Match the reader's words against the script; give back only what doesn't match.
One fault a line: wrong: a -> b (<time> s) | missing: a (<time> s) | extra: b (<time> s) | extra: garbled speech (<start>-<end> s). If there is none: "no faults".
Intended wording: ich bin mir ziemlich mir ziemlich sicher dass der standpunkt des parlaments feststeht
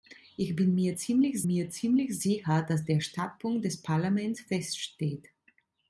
no faults